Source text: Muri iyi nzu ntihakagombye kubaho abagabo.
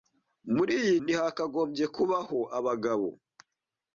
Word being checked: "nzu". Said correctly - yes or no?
no